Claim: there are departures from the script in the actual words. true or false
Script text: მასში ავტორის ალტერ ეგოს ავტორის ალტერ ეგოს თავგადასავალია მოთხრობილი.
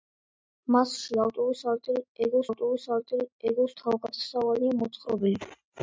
false